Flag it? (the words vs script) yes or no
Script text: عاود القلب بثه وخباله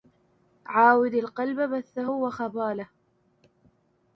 no